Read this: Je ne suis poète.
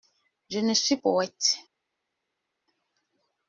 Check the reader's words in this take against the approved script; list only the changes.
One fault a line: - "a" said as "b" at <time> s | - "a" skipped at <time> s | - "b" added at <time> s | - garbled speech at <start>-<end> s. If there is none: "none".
none